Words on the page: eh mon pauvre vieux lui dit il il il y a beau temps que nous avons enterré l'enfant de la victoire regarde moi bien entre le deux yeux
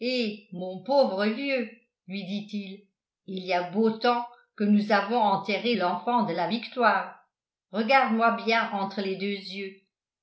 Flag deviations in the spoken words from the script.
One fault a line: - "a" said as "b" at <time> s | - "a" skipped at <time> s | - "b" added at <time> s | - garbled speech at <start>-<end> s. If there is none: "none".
- "il" skipped at 3.4 s
- "le" said as "les" at 9.0 s